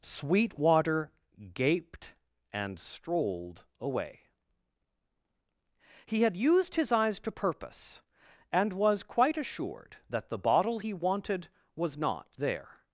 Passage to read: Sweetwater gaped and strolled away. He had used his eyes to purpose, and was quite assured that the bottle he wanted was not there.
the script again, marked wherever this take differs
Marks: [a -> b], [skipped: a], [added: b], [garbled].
Sweetwater gaped and strolled away. He had used his eyes to purpose, and was quite assured that the bottle he wanted was not there.